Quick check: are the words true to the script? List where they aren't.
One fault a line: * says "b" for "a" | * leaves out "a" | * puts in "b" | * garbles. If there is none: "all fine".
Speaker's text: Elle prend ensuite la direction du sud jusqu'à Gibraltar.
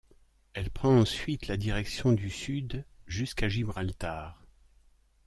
all fine